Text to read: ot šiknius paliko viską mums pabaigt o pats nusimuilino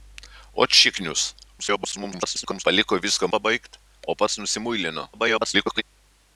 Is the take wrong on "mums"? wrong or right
wrong